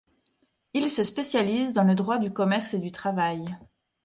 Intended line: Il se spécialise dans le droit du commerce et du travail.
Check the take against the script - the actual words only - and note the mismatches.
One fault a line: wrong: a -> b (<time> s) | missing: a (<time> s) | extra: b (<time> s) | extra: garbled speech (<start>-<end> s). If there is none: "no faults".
no faults